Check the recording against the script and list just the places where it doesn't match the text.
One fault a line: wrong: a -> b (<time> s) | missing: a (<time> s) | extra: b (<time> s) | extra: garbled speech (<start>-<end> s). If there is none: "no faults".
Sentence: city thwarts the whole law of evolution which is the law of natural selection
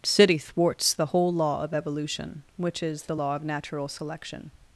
no faults